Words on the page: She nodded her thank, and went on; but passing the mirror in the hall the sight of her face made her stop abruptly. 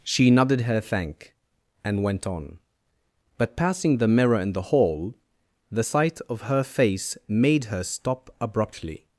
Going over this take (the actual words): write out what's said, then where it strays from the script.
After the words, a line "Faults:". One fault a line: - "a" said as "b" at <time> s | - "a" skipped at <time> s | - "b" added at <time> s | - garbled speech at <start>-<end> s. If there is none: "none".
She nodded her thank, and went on; but passing the mirror in the hall the sight of her face made her stop abruptly.
Faults:
none